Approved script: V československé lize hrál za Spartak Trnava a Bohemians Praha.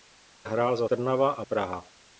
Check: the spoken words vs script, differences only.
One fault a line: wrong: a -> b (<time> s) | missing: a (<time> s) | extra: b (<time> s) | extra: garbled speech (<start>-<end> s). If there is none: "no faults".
missing: československé lize (0.5 s)
missing: Spartak (0.9 s)
missing: Bohemians (1.4 s)